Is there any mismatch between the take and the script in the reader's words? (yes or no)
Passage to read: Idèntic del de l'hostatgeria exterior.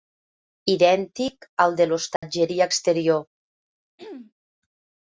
yes